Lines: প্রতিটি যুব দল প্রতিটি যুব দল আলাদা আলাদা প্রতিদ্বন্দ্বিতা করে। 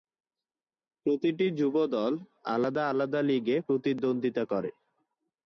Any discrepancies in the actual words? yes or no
yes